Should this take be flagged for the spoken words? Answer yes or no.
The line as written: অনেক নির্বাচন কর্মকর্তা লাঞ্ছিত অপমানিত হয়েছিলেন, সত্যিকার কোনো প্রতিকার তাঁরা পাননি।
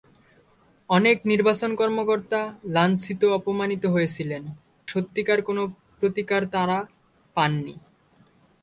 no